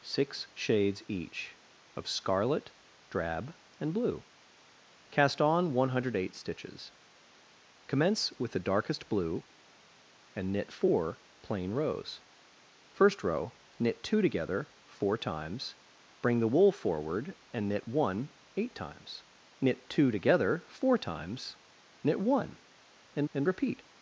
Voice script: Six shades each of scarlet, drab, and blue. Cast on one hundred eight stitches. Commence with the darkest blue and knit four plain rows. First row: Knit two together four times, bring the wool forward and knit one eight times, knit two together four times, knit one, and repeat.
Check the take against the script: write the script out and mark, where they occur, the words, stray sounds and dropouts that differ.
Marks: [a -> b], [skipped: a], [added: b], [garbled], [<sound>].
Six shades each of scarlet, drab, and blue. Cast on one hundred eight stitches. Commence with the darkest blue and knit four plain rows. First row: Knit two together four times, bring the wool forward and knit one eight times, knit two together four times, knit one, and [added: and] repeat.